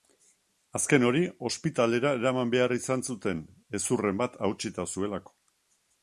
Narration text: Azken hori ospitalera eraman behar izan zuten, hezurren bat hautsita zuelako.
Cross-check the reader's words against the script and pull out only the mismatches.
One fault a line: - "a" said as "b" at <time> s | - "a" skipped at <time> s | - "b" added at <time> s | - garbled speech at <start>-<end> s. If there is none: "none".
none